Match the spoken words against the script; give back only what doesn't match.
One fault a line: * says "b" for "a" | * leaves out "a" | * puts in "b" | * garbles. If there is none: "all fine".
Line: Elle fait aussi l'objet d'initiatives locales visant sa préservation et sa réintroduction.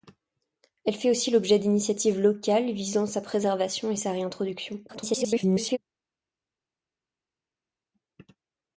* garbles